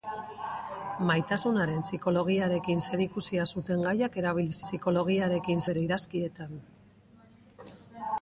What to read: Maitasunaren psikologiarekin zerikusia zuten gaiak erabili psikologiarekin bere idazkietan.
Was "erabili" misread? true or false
false